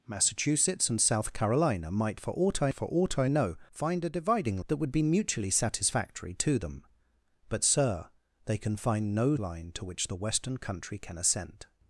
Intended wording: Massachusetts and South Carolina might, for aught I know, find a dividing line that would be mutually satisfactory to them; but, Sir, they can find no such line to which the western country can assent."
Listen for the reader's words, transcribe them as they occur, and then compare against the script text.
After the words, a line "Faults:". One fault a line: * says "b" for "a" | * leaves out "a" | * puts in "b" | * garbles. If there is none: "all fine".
Massachusetts and South Carolina might, for aught I for aught I know, find a dividing that would be mutually satisfactory to them; but, Sir, they can find no line to which the western country can assent."
Faults:
* puts in "for aught I"
* leaves out "line"
* leaves out "such"